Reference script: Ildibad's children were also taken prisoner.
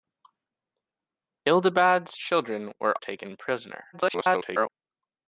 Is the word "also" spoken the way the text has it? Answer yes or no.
no